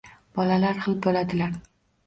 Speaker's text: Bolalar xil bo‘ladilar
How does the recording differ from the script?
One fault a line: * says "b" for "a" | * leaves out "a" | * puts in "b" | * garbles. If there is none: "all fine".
all fine